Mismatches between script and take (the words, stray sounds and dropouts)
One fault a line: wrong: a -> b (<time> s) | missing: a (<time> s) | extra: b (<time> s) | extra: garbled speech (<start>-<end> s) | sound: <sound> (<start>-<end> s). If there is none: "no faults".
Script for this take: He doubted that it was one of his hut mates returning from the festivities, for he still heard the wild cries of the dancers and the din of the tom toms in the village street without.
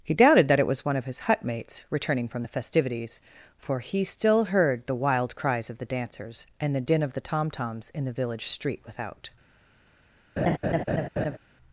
sound: laugh (10.4-11.4 s)